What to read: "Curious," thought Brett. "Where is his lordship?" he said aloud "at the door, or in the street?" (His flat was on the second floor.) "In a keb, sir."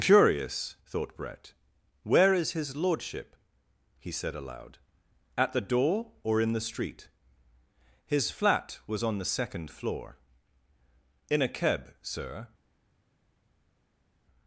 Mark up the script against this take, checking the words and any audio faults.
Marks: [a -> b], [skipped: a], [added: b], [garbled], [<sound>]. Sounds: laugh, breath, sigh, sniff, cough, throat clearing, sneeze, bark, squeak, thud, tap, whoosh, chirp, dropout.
"Curious," thought Brett. "Where is his lordship?" he said aloud "at the door, or in the street?" (His flat was on the second floor.) "In a keb, sir."